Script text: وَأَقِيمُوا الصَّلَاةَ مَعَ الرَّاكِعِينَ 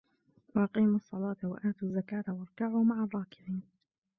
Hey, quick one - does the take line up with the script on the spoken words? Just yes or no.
no